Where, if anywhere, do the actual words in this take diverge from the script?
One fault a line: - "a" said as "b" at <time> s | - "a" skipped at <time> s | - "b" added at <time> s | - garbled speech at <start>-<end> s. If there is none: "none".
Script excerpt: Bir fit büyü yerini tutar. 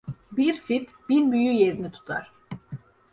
- "bin" added at 1.1 s